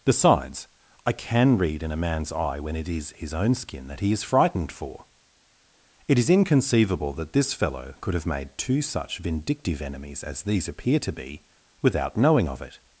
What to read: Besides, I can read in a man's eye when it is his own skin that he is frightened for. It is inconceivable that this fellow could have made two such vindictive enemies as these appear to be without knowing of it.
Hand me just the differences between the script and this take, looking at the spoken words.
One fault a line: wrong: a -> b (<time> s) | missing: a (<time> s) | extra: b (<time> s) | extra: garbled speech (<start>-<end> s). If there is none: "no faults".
no faults